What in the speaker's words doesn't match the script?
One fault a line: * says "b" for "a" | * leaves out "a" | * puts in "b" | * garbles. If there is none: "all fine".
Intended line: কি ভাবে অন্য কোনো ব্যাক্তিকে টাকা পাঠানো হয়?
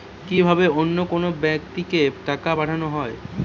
all fine